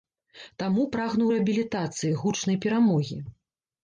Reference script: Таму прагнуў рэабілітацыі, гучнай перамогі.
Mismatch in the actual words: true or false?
false